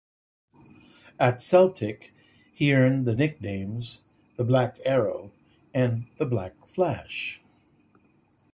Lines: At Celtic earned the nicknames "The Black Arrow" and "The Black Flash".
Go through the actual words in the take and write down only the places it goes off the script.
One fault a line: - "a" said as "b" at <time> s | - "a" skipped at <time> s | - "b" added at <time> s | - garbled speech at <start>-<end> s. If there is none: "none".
- "he" added at 2.5 s